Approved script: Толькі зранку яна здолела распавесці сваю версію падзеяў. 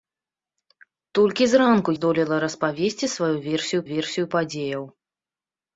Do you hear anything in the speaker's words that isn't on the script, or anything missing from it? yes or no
yes